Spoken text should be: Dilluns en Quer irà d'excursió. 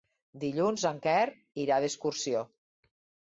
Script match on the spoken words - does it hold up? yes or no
yes